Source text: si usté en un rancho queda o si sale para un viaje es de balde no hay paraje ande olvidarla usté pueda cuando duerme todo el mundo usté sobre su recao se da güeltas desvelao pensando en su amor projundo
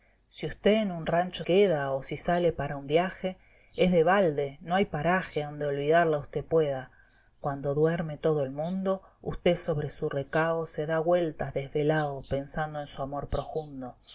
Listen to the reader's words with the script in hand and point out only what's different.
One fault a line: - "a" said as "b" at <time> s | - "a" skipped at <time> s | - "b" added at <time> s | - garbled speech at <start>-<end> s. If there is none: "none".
none